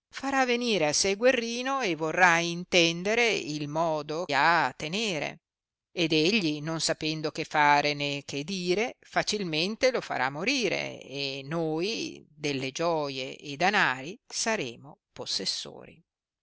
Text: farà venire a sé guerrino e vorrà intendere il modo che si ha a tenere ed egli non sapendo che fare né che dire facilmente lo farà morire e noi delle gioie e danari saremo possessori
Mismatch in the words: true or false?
true